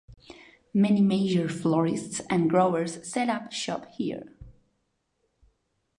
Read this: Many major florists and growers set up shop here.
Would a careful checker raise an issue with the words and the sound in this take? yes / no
no